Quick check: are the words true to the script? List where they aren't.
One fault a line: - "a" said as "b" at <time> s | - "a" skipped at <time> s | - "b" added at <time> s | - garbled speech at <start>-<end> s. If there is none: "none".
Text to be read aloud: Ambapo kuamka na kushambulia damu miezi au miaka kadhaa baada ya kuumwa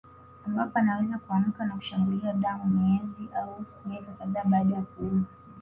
- "anaweza" added at 0.8 s